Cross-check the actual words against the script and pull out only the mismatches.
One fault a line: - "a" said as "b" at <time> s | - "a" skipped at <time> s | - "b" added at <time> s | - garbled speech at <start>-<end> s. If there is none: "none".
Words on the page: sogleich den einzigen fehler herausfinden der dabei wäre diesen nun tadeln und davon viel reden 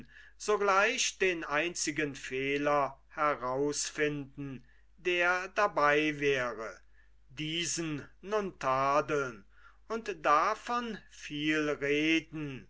none